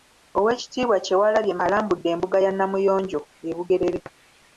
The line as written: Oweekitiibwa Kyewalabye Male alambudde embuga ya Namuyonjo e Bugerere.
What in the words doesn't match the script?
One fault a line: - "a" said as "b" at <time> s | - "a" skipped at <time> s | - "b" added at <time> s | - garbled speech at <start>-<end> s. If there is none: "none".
- "Male" skipped at 1.5 s